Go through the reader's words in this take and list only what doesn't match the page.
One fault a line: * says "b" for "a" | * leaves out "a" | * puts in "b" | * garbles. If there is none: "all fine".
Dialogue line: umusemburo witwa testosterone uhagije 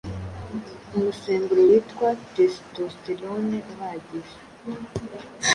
all fine